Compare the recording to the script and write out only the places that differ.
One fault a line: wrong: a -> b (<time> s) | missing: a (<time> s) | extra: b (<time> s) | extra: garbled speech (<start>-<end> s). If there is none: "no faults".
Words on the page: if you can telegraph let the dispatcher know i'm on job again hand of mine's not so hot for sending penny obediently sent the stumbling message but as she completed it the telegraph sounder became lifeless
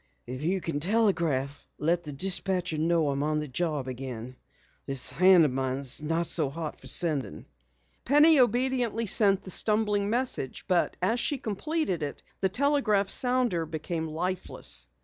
extra: the (3.4 s)
extra: this (4.9 s)